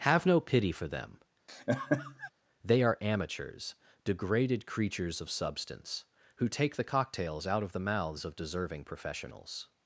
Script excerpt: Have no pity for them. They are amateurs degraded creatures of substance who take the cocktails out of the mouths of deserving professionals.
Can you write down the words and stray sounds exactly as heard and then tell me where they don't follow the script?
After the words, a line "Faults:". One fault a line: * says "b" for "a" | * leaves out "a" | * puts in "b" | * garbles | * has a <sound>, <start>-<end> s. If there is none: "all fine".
Have no pity for them. They are amateurs degraded creatures of substance who take the cocktails out of the mouths of deserving professionals.
Faults:
* has a laugh, 1.5-2.3 s